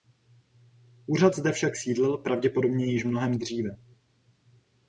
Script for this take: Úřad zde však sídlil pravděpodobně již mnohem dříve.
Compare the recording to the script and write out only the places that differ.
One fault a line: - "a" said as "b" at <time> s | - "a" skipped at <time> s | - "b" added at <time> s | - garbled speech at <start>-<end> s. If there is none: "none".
none